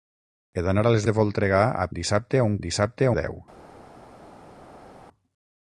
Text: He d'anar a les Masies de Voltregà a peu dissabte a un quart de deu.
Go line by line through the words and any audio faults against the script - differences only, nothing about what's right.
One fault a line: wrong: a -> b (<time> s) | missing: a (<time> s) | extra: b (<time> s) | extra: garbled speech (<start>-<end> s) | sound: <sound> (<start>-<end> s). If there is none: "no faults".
missing: Masies (1.0 s)
missing: peu (1.9 s)
wrong: quart -> dissabte (2.7 s)